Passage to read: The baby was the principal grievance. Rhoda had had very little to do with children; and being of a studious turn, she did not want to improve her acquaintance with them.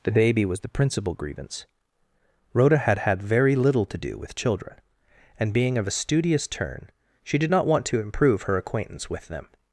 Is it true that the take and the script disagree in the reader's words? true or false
false